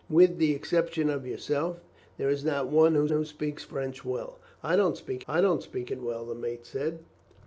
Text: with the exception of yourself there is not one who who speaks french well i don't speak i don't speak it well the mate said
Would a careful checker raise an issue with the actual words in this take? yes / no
no